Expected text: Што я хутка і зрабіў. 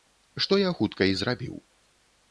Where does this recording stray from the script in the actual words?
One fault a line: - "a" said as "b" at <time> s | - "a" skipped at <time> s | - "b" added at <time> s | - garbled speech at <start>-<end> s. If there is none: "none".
none